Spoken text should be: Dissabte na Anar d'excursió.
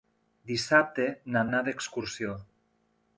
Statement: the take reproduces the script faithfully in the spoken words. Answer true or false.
true